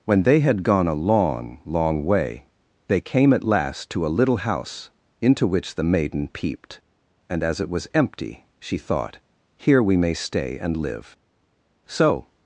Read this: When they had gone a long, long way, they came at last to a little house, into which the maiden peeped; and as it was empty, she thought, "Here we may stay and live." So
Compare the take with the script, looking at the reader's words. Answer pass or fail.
pass